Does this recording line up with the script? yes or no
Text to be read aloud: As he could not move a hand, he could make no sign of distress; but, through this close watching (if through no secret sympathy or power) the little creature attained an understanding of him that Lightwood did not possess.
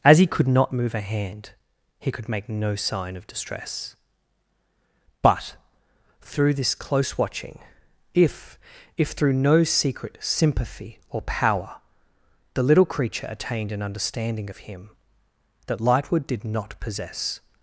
no